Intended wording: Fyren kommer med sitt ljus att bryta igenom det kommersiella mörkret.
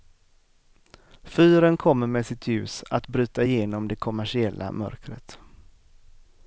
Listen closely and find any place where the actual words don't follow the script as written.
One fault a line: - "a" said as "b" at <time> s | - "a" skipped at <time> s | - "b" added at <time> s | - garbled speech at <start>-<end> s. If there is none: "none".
none